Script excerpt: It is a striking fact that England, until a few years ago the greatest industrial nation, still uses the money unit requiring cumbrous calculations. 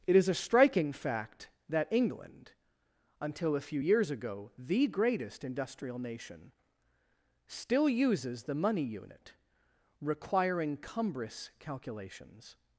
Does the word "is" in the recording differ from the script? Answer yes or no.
no